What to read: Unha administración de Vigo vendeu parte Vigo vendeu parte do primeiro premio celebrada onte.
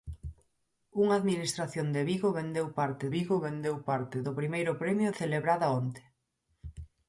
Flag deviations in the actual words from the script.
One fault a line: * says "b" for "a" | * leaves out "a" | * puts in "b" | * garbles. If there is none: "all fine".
all fine